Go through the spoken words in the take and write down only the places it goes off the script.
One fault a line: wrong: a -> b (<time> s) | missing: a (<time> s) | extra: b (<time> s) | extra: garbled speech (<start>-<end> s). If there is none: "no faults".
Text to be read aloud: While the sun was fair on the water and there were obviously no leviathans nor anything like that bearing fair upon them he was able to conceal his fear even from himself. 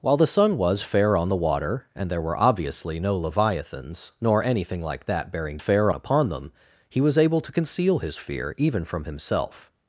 no faults